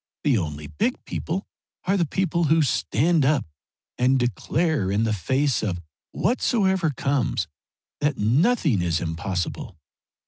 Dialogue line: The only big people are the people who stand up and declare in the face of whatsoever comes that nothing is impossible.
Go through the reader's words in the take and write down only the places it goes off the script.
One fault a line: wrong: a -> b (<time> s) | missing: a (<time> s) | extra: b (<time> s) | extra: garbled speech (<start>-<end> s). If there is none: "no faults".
no faults